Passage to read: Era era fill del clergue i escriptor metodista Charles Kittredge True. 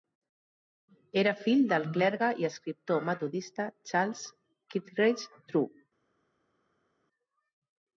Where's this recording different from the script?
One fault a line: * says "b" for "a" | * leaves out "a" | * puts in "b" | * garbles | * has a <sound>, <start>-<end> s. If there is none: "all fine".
* leaves out "era"